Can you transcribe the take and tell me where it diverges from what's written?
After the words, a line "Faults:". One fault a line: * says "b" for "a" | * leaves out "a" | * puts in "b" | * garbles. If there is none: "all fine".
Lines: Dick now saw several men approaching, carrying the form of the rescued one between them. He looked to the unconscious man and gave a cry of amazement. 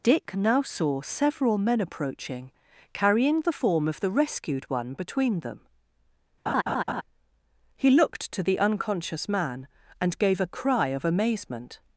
Dick now saw several men approaching, carrying the form of the rescued one between them. He looked to the unconscious man and gave a cry of amazement.
Faults:
all fine